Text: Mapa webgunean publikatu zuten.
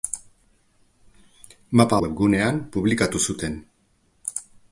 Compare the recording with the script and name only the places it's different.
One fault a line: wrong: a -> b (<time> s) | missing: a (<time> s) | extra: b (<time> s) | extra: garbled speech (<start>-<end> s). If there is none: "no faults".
no faults